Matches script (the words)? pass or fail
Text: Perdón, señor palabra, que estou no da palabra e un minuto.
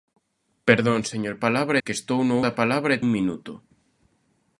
pass